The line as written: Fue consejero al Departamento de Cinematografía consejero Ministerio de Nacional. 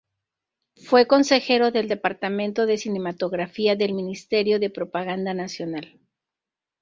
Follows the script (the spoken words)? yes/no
no